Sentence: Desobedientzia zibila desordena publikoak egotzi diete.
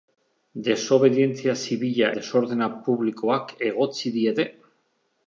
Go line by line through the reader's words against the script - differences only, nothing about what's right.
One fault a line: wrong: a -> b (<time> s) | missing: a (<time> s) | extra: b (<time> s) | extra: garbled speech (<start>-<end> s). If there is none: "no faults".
no faults